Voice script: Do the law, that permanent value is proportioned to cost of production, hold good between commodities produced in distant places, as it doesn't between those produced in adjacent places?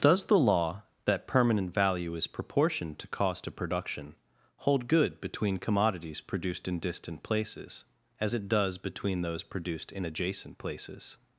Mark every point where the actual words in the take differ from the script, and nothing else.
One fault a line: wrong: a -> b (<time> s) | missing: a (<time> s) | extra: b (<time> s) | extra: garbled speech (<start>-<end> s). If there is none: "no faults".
wrong: Do -> Does (0.0 s)
wrong: doesn't -> does (8.5 s)